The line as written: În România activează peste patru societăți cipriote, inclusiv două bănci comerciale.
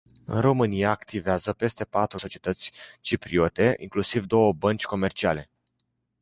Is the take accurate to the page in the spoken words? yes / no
yes